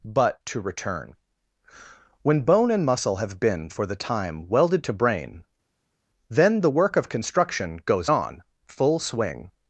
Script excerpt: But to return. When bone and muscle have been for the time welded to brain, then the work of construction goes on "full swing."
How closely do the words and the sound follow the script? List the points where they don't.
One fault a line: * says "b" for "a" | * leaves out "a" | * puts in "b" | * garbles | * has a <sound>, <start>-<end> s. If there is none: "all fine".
all fine